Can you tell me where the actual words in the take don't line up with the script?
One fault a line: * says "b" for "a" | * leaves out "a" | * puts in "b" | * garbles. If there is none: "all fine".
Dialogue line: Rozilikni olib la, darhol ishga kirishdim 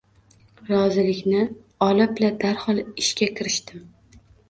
all fine